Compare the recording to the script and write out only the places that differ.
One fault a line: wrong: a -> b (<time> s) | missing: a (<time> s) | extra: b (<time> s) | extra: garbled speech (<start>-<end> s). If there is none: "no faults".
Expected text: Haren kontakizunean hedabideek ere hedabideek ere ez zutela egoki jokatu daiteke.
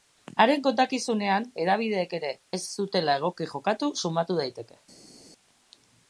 missing: hedabideek ere (2.3 s)
extra: sumatu (4.0 s)